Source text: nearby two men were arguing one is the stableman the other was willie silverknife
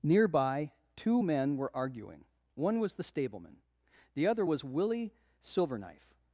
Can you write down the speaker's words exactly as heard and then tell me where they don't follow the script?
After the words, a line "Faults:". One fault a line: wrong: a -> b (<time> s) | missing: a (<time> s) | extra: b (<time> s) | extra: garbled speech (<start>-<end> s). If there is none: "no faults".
nearby two men were arguing one was the stableman the other was willie silverknife
Faults:
wrong: is -> was (2.8 s)